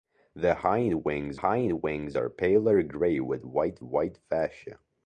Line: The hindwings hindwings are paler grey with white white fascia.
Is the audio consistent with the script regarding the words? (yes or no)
yes